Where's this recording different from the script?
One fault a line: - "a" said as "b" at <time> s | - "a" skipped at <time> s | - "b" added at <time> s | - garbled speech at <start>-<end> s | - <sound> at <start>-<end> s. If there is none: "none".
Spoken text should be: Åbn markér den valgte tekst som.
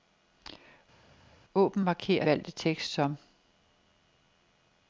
- "den" skipped at 2.3 s